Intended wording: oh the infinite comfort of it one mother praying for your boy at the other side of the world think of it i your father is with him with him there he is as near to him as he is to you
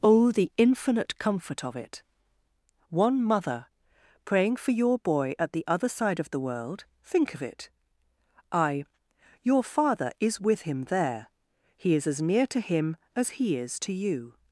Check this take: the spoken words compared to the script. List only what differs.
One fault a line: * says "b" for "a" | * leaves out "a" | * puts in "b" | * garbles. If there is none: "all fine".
* leaves out "with him"